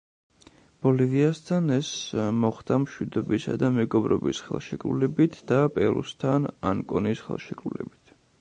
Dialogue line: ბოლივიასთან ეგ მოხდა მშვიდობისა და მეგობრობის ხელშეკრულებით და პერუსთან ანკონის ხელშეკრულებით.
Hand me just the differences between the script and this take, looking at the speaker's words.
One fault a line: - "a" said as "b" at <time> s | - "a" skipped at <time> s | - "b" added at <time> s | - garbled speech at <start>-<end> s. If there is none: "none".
- "ეგ" said as "ეს" at 1.8 s